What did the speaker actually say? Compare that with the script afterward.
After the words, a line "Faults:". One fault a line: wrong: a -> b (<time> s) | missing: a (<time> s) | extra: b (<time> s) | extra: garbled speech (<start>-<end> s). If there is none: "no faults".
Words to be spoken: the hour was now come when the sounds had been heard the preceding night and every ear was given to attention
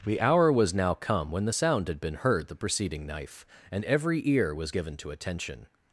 the hour was now come when the sound had been heard the preceding knife and every ear was given to attention
Faults:
wrong: sounds -> sound (1.5 s)
wrong: night -> knife (3.1 s)